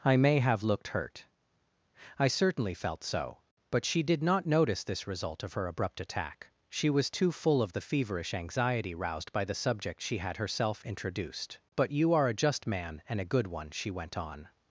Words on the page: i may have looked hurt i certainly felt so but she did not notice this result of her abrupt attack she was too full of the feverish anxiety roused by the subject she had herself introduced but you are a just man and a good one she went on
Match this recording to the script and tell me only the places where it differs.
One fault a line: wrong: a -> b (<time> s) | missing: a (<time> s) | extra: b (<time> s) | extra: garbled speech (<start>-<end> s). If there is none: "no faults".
no faults